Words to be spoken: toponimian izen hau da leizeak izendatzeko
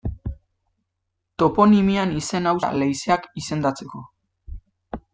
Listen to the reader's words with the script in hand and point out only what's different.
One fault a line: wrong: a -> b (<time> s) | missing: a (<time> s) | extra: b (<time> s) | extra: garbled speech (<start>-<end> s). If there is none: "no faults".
no faults